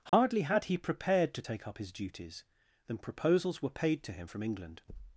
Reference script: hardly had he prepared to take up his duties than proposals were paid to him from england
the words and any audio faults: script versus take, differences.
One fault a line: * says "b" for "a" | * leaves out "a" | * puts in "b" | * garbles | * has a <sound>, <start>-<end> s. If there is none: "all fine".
* has a dropout, 0.1-0.1 s